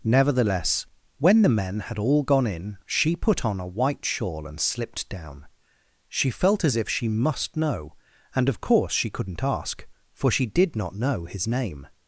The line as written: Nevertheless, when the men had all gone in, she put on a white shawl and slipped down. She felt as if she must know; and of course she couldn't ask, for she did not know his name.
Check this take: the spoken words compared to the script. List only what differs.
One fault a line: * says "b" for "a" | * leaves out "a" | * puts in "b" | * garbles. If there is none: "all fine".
all fine